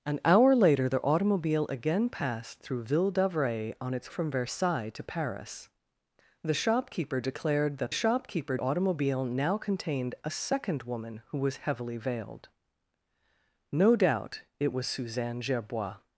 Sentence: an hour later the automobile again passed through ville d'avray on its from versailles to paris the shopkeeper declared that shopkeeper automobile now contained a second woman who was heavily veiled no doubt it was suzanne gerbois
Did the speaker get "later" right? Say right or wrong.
right